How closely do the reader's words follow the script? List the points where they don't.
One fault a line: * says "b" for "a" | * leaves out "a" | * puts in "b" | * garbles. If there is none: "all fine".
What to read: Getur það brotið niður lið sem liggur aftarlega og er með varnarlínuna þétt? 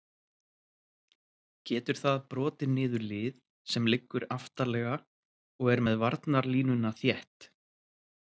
all fine